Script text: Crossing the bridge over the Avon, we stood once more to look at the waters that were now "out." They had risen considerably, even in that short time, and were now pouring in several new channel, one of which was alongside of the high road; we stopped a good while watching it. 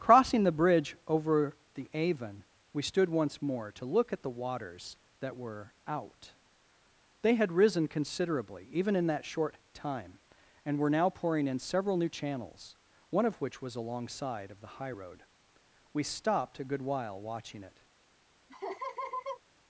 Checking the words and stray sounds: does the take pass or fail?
fail